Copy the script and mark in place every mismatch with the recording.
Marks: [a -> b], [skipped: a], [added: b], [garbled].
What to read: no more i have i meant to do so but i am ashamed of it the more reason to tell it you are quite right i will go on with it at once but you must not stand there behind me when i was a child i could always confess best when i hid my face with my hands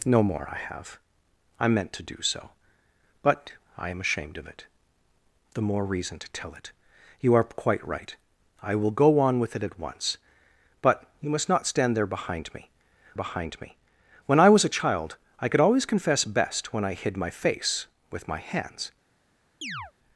no more i have i meant to do so but i am ashamed of it the more reason to tell it you are quite right i will go on with it at once but you must not stand there behind me [added: behind me] when i was a child i could always confess best when i hid my face with my hands